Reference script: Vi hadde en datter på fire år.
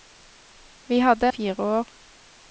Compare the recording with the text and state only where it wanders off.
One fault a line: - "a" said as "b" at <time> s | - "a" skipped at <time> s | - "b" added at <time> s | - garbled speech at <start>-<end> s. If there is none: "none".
- "en datter på" skipped at 1.3 s